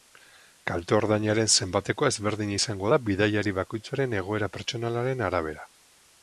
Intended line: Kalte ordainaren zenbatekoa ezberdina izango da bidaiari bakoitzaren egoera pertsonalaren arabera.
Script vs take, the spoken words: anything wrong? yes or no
no